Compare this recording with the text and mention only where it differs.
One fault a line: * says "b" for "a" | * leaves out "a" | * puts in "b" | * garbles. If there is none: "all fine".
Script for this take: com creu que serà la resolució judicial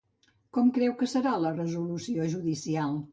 all fine